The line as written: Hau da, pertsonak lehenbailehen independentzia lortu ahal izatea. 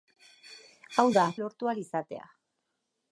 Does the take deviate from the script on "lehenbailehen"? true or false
true